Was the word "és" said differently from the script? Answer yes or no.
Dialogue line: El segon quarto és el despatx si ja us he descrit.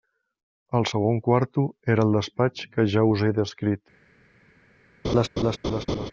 yes